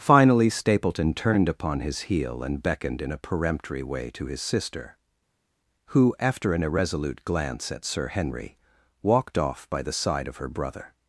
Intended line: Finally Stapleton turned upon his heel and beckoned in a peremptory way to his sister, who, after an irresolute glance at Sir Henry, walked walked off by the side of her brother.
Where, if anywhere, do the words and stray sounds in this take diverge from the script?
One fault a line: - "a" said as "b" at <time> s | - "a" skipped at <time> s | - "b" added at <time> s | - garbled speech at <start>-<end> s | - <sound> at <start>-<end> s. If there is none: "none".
- "walked" skipped at 9.4 s